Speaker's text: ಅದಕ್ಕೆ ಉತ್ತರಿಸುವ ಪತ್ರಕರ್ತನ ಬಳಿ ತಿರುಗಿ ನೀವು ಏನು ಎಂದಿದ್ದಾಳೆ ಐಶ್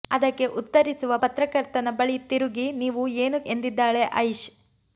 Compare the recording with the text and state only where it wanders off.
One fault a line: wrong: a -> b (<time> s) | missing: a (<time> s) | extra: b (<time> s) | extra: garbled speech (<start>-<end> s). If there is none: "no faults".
no faults